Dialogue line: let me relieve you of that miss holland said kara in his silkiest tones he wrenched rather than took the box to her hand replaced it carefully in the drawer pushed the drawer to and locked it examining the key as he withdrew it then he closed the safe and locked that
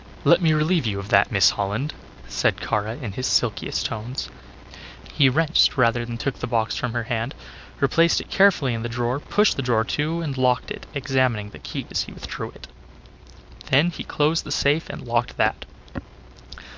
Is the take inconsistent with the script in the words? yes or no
yes